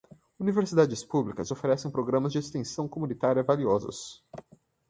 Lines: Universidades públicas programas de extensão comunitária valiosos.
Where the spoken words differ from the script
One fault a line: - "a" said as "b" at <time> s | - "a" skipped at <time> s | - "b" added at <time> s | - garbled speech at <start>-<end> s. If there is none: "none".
- "oferecem" added at 1.5 s